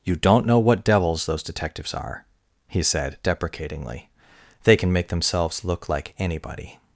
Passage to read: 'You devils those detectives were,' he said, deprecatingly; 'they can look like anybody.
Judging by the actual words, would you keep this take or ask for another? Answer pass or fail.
fail